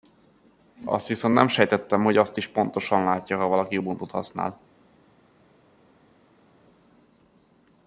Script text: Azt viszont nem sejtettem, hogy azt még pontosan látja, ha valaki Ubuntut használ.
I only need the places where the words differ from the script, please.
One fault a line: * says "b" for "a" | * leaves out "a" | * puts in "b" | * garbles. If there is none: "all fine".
* says "is" for "még"